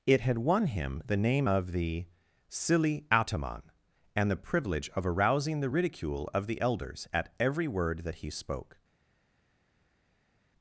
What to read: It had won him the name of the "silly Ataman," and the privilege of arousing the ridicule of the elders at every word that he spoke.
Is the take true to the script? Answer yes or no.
yes